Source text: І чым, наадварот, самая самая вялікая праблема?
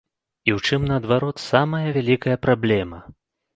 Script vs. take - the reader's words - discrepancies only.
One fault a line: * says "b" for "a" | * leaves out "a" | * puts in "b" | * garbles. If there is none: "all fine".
* puts in "ў"
* leaves out "самая"